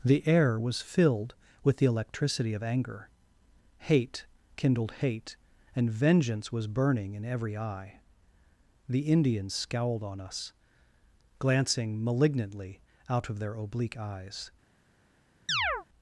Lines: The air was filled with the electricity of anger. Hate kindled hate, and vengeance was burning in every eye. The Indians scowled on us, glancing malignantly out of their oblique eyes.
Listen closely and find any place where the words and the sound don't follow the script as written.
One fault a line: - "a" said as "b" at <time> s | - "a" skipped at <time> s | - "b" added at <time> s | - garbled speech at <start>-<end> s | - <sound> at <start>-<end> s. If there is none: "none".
- chirp at 15.5-15.9 s